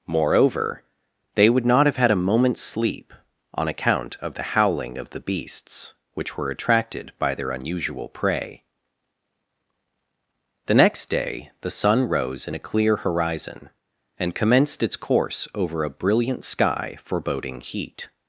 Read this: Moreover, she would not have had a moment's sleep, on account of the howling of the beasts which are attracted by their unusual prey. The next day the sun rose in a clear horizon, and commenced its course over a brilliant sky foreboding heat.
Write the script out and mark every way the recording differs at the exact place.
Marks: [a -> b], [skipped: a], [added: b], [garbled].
Moreover, [she -> they] would not have had a moment's sleep, on account of the howling of the beasts which [are -> were] attracted by their unusual prey. The next day the sun rose in a clear horizon, and commenced its course over a brilliant sky foreboding heat.